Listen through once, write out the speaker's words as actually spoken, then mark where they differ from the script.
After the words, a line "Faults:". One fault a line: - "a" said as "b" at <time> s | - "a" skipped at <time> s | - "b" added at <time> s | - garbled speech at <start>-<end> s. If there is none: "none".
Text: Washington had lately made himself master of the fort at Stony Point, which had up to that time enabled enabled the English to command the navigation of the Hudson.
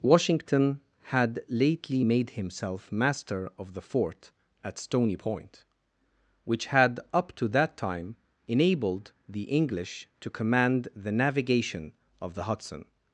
Washington had lately made himself master of the fort at Stony Point, which had up to that time enabled the English to command the navigation of the Hudson.
Faults:
- "enabled" skipped at 9.1 s